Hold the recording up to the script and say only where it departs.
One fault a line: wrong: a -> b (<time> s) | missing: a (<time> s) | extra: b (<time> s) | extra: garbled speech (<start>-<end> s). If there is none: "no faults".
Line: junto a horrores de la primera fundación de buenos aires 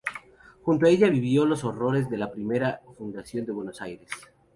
extra: ella vivió los (0.9 s)